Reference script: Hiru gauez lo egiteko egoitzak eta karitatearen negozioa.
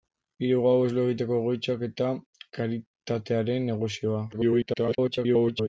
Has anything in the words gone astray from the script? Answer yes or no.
yes